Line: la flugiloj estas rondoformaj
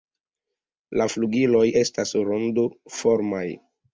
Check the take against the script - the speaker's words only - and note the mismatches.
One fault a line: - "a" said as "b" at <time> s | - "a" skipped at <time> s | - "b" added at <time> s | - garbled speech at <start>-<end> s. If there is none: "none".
none